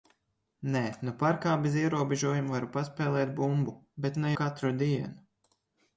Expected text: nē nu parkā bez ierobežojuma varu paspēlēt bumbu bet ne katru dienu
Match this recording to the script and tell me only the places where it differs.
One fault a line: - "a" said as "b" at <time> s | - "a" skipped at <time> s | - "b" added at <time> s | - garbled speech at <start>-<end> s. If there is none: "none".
none